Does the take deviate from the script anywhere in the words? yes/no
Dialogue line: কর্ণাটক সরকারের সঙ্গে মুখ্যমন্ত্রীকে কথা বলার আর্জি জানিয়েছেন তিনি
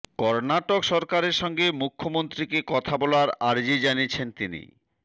no